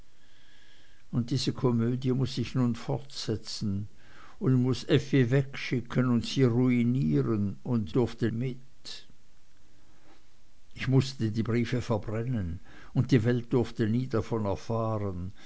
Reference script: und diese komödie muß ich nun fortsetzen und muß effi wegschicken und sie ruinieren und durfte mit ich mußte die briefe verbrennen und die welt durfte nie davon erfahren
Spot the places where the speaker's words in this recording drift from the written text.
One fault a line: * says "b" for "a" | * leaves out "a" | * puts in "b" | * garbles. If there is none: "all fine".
all fine